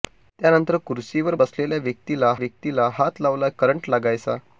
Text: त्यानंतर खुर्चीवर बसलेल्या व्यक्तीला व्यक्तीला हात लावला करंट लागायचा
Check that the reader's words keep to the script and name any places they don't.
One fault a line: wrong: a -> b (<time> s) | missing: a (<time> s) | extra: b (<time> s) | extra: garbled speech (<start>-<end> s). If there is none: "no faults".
no faults